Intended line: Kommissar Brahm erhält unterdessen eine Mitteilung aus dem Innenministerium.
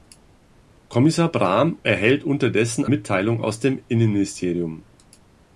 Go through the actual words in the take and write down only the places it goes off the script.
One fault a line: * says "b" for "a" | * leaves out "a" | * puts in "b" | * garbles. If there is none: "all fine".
* leaves out "eine"